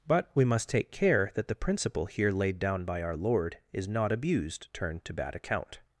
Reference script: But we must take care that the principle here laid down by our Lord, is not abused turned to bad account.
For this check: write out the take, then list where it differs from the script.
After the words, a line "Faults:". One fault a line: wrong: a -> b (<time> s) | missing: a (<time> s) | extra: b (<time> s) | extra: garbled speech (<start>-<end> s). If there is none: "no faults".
But we must take care that the principle here laid down by our Lord, is not abused turned to bad account.
Faults:
no faults